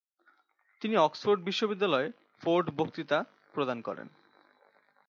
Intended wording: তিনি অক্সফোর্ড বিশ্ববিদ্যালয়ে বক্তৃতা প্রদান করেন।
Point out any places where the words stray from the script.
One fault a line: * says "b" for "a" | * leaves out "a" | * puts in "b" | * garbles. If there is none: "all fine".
* puts in "ফোর্ড"